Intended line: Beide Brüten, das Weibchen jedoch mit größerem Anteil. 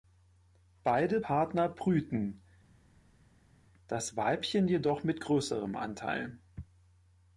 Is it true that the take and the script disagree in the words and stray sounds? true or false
true